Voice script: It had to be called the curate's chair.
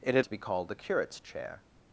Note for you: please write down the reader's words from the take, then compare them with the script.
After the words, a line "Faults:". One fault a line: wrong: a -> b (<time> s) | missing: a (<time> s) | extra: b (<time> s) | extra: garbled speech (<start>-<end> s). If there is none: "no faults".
It had to be called the curate's chair.
Faults:
no faults